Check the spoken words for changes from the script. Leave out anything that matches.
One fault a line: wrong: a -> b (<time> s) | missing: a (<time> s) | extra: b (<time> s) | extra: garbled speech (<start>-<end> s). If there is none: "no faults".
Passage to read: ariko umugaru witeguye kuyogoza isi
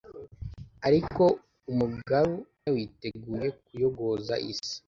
no faults